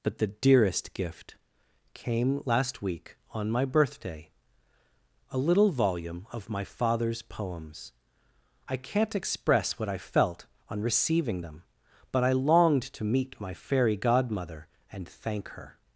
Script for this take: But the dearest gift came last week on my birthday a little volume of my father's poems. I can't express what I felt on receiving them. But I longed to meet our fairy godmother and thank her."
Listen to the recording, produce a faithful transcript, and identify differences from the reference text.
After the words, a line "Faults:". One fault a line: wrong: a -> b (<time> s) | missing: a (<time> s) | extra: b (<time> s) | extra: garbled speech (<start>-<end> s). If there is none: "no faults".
But the dearest gift came last week on my birthday a little volume of my father's poems. I can't express what I felt on receiving them. But I longed to meet my fairy godmother and thank her."
Faults:
wrong: our -> my (13.4 s)